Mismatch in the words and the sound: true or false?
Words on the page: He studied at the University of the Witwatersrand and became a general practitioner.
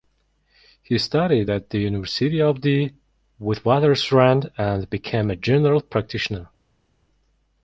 false